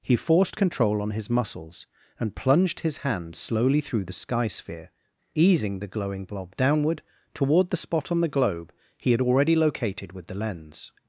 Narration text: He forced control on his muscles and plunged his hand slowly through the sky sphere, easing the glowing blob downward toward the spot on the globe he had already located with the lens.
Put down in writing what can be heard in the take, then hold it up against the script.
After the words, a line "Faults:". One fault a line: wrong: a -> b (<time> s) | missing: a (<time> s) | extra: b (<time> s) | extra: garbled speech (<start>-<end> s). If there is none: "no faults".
He forced control on his muscles and plunged his hand slowly through the sky sphere, easing the glowing blob downward toward the spot on the globe he had already located with the lens.
Faults:
no faults